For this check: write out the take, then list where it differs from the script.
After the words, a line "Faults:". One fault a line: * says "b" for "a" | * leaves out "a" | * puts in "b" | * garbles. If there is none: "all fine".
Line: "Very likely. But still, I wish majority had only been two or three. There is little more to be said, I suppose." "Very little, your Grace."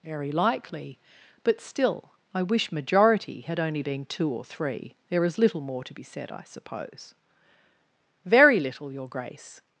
"Very likely. But still, I wish majority had only been two or three. There is little more to be said, I suppose." "Very little, your Grace."
Faults:
all fine